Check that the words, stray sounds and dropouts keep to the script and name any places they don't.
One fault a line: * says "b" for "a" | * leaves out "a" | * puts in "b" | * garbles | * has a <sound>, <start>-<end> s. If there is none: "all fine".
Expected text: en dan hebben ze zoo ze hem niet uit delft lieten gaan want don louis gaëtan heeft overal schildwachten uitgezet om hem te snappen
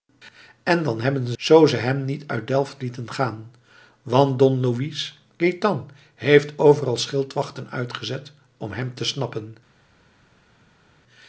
all fine